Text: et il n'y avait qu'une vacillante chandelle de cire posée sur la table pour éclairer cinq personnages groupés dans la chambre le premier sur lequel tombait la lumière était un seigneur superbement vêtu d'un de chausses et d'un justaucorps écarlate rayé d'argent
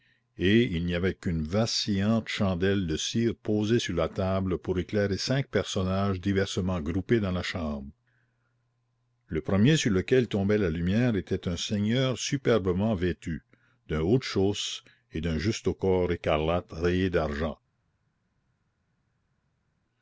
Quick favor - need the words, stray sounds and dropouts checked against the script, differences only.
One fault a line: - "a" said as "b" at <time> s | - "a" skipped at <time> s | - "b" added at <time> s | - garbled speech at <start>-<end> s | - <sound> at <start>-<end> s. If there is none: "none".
- "diversement" added at 6.2 s
- "haut" added at 14.0 s